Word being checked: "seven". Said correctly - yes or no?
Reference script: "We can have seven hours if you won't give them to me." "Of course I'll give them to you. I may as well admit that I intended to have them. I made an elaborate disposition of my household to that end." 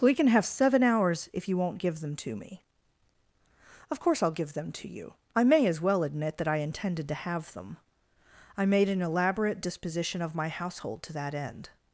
yes